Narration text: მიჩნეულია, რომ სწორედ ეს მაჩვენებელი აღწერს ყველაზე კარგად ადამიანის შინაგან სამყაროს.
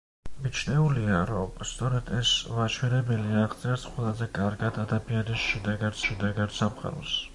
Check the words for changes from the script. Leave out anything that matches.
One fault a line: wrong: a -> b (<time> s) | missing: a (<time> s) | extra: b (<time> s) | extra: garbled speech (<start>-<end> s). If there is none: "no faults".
extra: შინაგან (6.1 s)